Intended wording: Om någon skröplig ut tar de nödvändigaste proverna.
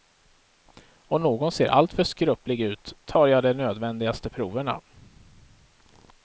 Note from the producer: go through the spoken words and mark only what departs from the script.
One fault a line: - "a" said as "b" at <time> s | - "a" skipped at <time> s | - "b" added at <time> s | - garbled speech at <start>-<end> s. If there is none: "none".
- "ser alltför" added at 1.5 s
- "jag" added at 3.3 s